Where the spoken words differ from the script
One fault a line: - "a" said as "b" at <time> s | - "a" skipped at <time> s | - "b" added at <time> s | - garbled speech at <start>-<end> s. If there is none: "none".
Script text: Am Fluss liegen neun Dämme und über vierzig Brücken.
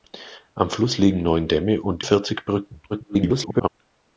- "über" skipped at 2.0 s
- garbled speech at 2.9-3.7 s